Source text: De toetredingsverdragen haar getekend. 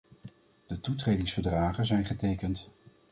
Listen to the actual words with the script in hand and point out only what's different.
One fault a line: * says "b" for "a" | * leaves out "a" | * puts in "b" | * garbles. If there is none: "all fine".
* says "zijn" for "haar"